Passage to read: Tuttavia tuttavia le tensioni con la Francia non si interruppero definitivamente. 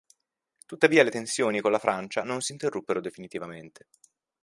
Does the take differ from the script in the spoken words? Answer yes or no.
yes